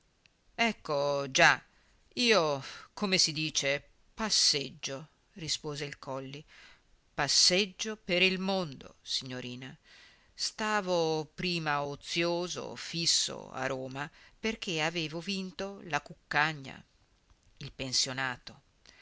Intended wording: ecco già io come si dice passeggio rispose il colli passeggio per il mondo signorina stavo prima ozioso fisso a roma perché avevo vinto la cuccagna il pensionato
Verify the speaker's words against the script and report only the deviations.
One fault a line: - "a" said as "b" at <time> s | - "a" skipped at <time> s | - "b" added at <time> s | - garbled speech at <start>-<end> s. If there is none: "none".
none